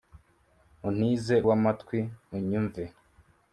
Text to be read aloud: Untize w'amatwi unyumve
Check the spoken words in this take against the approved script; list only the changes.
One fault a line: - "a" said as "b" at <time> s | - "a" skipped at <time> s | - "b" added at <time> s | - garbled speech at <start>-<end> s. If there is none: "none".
none